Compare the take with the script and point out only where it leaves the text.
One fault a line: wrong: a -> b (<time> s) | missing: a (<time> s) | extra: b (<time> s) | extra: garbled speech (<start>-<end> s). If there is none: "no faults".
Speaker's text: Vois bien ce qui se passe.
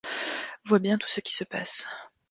extra: tout (1.0 s)